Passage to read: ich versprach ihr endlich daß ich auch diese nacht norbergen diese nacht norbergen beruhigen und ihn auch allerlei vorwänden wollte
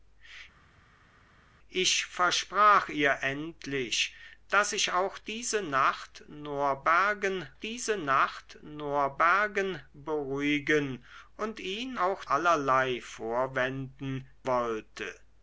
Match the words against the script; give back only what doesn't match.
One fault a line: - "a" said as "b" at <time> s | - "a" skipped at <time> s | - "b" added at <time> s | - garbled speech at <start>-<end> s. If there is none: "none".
none